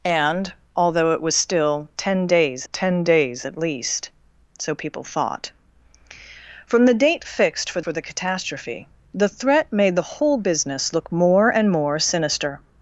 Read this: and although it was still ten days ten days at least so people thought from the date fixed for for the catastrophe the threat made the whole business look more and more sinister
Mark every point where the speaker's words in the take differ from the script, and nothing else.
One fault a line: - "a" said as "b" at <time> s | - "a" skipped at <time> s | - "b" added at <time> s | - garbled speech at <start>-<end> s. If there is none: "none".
none